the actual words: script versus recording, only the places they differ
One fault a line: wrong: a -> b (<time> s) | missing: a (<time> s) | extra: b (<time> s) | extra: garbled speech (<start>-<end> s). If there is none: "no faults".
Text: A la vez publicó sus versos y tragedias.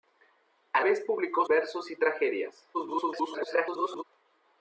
missing: la (0.8 s)
missing: sus (1.4 s)
extra: garbled speech (2.7-4.0 s)